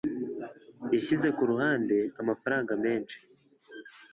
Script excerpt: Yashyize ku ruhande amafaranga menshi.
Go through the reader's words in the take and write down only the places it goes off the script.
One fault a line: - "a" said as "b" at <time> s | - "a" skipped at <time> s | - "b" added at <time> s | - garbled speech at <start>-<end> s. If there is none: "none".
none